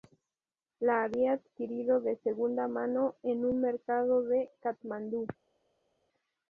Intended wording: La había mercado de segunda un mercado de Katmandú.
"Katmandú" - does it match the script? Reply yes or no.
yes